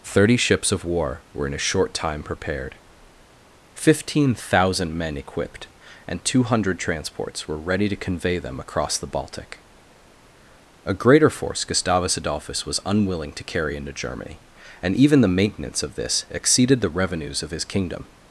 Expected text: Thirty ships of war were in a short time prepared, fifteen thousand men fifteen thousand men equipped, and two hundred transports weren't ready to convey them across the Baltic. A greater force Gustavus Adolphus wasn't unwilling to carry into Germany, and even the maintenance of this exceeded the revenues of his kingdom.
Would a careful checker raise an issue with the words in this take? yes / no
yes